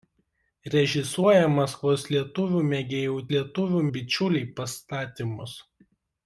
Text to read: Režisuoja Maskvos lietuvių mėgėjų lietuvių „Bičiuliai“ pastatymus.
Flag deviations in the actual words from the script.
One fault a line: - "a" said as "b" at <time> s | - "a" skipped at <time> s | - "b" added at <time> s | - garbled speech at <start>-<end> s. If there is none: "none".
none